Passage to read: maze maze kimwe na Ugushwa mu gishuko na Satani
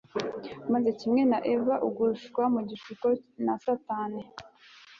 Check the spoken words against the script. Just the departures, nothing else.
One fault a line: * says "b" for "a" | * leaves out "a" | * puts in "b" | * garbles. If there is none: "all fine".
* leaves out "maze"
* puts in "Eva"